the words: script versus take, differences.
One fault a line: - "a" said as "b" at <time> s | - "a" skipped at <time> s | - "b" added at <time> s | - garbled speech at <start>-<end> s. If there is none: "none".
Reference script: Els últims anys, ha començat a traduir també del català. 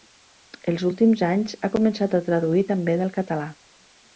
none